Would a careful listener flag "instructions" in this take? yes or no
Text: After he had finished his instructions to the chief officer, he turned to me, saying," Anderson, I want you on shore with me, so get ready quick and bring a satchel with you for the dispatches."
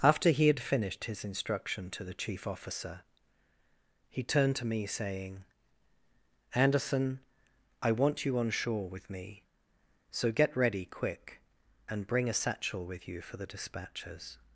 yes